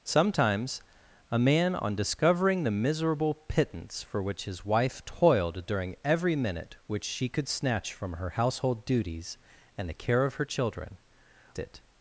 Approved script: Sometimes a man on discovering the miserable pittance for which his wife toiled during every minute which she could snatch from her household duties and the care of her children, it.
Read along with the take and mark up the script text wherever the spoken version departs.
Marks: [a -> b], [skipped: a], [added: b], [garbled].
Sometimes a man on discovering the miserable pittance for which his wife toiled during every minute which she could snatch from her household duties and the care of her children, it.